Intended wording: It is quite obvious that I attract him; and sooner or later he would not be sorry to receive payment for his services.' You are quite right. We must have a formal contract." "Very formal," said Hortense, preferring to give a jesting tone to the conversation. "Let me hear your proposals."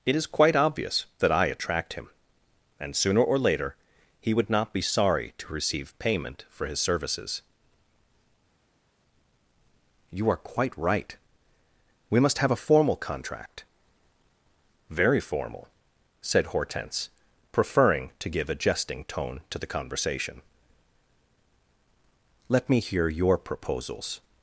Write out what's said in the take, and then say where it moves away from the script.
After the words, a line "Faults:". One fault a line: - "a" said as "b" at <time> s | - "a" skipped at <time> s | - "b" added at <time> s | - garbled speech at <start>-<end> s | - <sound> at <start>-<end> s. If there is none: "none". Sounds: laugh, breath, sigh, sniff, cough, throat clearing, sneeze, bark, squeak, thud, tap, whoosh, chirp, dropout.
It is quite obvious that I attract him; and sooner or later he would not be sorry to receive payment for his services.' You are quite right. We must have a formal contract." "Very formal," said Hortense, preferring to give a jesting tone to the conversation. "Let me hear your proposals."
Faults:
none